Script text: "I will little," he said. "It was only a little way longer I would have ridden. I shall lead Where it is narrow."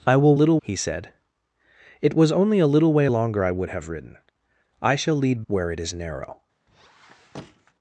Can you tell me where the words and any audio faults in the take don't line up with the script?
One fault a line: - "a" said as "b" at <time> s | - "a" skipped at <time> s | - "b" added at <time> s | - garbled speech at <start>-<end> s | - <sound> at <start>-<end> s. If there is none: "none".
- squeak at 6.7-7.7 s